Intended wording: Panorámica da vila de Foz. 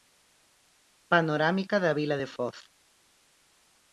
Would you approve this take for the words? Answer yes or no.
yes